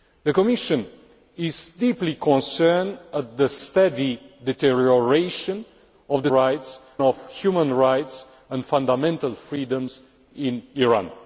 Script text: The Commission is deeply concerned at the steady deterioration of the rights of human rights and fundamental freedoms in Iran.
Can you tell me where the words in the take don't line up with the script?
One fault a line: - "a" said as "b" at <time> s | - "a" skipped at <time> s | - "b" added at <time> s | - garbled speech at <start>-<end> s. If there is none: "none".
none